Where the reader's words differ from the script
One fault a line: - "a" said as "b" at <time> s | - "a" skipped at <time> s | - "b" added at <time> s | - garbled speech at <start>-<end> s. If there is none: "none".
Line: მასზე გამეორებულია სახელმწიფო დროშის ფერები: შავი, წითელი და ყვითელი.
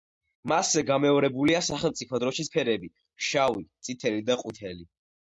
none